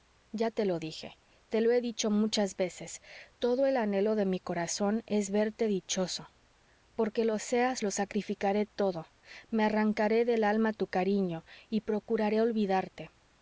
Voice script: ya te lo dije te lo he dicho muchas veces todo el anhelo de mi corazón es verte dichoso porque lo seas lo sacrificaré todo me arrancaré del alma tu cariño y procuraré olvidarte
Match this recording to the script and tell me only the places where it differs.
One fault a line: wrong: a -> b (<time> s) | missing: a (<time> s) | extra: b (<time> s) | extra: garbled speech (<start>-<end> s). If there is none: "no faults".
no faults